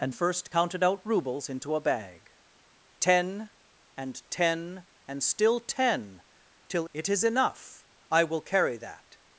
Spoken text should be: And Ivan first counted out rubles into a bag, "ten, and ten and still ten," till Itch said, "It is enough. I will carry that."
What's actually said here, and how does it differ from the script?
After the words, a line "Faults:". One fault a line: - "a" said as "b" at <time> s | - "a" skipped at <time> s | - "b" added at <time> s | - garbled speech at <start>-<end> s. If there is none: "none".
And First counted out rubles into a bag, "ten, and ten and still ten," till "It is enough. I will carry that."
Faults:
- "Ivan" skipped at 0.1 s
- "Itch said" skipped at 6.9 s